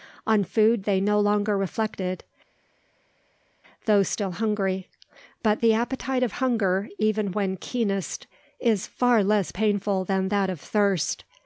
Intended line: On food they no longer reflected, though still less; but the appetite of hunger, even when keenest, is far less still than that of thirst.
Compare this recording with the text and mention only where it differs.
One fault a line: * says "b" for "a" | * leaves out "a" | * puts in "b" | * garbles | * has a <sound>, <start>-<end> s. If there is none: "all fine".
* says "hungry" for "less"
* says "painful" for "still"